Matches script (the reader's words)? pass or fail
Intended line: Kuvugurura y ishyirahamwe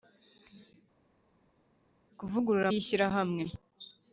pass